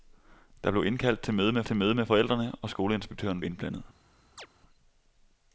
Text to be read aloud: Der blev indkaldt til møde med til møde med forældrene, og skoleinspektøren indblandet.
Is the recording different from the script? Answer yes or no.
no